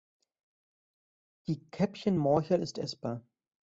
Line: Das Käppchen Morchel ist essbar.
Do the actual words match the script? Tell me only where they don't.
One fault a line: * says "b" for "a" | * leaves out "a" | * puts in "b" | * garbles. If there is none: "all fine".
* says "Die" for "Das"